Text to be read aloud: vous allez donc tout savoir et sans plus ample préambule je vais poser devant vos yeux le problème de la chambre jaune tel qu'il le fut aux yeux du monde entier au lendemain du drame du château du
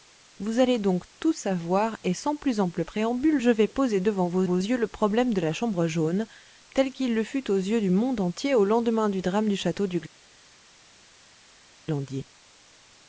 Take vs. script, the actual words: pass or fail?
fail